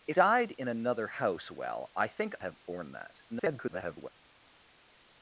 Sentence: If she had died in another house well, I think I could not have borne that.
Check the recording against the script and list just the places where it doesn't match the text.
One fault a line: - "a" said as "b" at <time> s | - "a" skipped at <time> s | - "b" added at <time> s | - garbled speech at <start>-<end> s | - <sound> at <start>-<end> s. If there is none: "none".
- "she had" skipped at 0.2 s
- "I could not" skipped at 2.4 s
- garbled speech at 3.3-4.1 s